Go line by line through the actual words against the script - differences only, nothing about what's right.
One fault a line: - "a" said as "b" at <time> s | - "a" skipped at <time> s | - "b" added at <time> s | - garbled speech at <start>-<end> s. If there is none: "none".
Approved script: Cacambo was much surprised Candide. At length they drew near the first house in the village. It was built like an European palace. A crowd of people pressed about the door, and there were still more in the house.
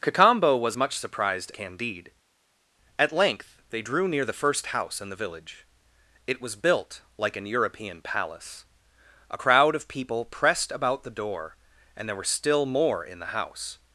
none